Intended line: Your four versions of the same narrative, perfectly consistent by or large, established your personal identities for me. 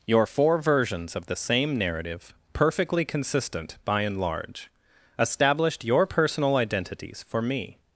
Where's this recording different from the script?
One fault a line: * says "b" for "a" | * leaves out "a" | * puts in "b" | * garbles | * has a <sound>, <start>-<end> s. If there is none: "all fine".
* says "and" for "or"